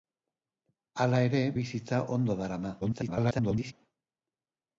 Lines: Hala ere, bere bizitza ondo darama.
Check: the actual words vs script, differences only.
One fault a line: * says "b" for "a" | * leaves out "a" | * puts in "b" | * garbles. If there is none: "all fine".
* leaves out "bere"
* garbles